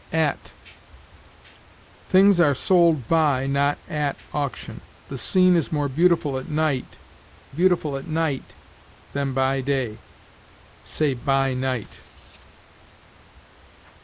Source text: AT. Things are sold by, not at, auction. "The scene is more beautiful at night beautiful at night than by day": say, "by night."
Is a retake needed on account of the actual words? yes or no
no